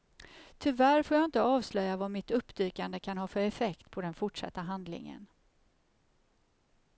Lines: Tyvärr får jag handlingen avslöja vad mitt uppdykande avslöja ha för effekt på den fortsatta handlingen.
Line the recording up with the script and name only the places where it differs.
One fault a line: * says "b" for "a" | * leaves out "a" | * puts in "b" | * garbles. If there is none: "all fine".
* says "inte" for "handlingen"
* says "kan" for "avslöja"